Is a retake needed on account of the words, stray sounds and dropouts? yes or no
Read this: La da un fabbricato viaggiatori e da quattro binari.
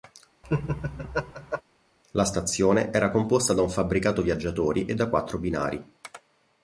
yes